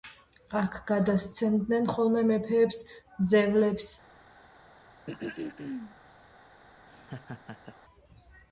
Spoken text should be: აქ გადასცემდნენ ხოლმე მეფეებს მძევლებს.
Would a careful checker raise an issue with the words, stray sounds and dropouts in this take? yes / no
yes